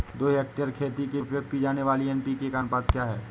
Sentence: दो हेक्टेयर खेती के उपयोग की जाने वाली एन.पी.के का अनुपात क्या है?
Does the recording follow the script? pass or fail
pass